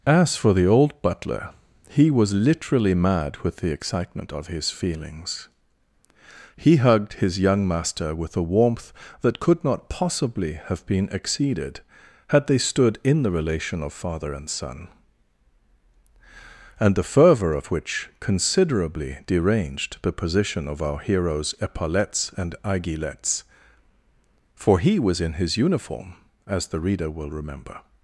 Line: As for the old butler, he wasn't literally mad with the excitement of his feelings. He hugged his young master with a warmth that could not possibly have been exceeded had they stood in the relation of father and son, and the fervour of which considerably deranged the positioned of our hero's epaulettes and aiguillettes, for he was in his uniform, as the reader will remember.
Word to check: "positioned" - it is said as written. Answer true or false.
false